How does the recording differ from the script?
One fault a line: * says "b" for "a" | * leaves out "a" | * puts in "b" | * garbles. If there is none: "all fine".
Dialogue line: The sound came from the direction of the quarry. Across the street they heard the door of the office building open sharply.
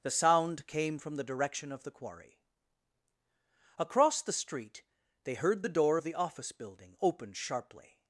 all fine